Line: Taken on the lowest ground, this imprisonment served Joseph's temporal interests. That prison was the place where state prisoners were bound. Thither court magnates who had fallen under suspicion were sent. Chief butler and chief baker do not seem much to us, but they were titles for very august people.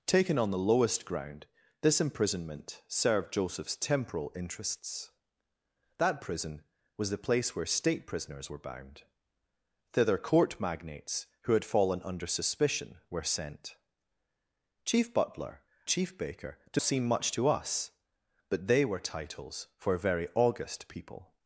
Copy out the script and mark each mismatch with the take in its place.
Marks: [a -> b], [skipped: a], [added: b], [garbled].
Taken on the lowest ground, this imprisonment served Joseph's temporal interests. That prison was the place where state prisoners were bound. Thither court magnates who had fallen under suspicion were sent. Chief butler [skipped: and] chief baker do [skipped: not] seem much to us, but they were titles for very august people.